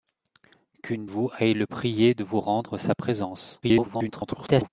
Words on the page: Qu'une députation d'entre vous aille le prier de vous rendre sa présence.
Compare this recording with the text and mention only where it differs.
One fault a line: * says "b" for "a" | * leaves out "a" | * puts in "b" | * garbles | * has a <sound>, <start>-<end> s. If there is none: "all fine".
* leaves out "députation d'entre"
* garbles